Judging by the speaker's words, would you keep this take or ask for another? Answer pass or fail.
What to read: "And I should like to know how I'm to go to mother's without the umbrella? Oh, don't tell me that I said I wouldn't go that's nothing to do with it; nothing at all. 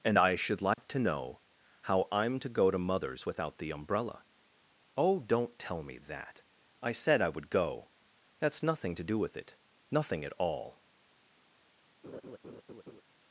fail